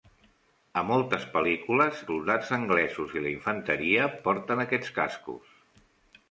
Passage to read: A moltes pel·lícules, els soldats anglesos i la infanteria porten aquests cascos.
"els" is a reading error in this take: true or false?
true